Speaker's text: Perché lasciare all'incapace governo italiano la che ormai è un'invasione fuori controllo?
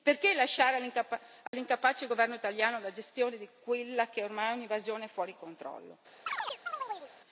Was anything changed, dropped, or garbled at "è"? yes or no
no